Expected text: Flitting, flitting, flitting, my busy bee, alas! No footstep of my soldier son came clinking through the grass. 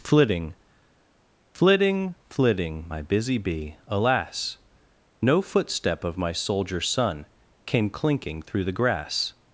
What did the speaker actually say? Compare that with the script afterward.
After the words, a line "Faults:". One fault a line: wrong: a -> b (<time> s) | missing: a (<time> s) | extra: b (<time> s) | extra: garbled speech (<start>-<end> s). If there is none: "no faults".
Flitting, flitting, flitting, my busy bee, alas! No footstep of my soldier son came clinking through the grass.
Faults:
no faults